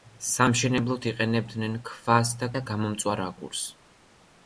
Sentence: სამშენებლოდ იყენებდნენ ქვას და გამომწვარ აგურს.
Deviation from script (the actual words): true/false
true